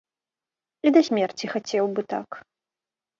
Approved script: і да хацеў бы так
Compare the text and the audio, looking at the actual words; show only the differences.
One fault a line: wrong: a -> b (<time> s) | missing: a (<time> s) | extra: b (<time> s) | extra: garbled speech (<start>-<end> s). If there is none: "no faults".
extra: смерці (1.1 s)